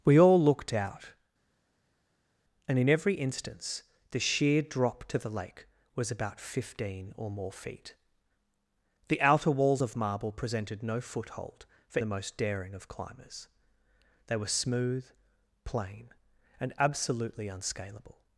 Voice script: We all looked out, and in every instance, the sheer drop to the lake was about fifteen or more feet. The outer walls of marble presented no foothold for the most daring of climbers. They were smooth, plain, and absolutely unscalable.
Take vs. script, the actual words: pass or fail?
pass